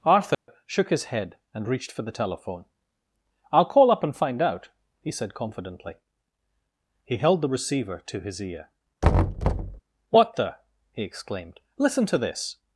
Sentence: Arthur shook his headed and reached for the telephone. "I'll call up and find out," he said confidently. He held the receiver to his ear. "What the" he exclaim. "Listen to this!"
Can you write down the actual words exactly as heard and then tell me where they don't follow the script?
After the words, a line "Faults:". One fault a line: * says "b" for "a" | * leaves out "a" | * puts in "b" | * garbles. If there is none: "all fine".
Arthur shook his head and reached for the telephone. "I'll call up and find out," he said confidently. He held the receiver to his ear. "What the" he exclaimed. "Listen to this!"
Faults:
* says "head" for "headed"
* says "exclaimed" for "exclaim"